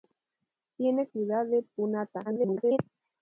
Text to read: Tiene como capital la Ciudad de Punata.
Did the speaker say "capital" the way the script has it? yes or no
no